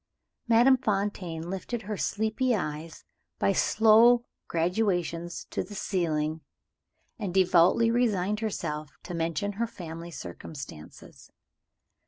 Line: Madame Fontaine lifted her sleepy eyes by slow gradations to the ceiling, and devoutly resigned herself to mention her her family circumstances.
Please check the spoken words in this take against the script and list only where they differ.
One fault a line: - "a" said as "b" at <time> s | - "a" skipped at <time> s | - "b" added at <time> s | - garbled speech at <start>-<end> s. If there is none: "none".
- "her" skipped at 9.7 s